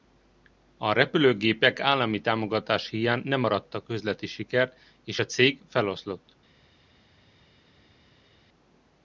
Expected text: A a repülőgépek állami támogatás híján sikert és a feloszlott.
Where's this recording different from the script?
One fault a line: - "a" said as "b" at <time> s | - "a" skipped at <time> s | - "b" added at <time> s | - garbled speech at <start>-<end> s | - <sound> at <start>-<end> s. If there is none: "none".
- "a" skipped at 0.9 s
- "nem arattak üzleti" added at 3.2 s
- "cég" added at 5.3 s